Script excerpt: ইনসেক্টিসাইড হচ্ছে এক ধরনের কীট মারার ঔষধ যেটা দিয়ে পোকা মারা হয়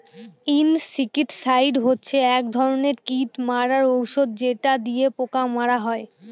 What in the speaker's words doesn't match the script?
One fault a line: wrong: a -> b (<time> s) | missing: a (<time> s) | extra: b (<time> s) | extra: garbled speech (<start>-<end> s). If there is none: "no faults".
no faults